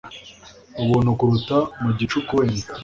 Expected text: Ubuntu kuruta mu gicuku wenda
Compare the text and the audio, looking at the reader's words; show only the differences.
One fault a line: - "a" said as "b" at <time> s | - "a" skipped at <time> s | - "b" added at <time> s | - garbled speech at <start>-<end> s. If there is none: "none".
none